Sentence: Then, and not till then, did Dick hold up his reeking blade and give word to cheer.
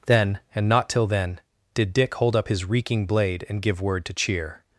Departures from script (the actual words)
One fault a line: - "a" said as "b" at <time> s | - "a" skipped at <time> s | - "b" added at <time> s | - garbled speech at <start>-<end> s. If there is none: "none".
none